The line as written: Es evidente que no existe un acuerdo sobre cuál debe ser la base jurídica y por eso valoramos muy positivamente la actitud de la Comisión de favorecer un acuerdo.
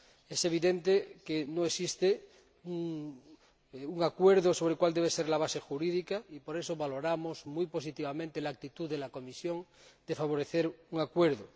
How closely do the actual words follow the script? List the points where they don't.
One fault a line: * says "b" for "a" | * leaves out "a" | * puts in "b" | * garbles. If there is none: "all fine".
all fine